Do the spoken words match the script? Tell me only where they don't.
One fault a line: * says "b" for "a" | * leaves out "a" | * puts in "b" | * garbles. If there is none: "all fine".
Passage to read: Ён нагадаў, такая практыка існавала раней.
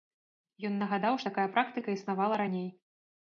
all fine